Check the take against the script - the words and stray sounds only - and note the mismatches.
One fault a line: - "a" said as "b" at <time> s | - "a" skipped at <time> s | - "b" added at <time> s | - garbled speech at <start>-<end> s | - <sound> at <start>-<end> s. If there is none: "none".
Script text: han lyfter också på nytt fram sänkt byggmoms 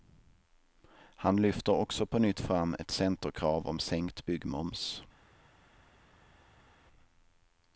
- "ett centerkrav om" added at 2.8 s